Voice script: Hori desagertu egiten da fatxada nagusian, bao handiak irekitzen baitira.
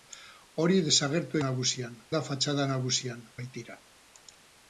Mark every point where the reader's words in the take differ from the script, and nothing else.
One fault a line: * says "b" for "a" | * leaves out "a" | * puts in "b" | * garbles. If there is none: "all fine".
* says "nagusian" for "egiten"
* leaves out "bao handiak irekitzen"